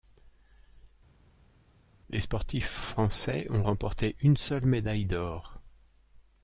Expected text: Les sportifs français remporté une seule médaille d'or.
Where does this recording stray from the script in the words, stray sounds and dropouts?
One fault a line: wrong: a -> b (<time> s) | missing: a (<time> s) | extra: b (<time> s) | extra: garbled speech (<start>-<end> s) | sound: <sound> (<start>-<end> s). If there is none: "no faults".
extra: ont (3.5 s)